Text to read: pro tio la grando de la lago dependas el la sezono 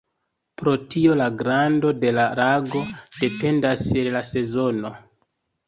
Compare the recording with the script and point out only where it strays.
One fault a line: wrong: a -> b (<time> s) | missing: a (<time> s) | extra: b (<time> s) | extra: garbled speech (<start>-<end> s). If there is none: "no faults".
no faults